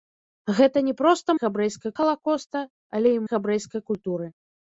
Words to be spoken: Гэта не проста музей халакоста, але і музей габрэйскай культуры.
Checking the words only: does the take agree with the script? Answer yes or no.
no